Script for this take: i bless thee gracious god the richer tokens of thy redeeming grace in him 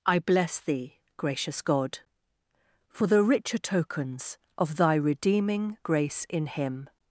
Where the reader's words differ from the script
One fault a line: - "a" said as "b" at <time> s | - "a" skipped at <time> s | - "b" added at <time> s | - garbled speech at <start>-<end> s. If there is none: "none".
- "for" added at 2.9 s